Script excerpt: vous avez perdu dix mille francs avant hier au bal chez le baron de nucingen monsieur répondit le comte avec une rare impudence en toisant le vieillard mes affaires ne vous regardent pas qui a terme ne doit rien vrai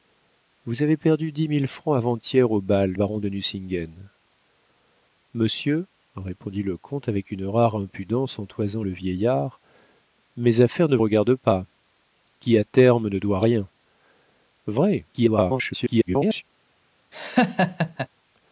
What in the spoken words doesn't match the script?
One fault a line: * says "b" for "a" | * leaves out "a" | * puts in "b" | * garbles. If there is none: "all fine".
* leaves out "chez le"
* leaves out "vous"
* garbles